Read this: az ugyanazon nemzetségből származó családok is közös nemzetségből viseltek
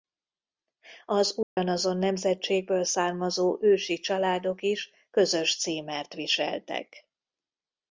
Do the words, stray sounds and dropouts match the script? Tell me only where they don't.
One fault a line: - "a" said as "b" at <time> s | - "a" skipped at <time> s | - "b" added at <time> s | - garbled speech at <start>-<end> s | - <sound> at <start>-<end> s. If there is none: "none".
- dropout at 1.4-1.6 s
- "ősi" added at 3.6 s
- "nemzetségből" said as "címert" at 5.6 s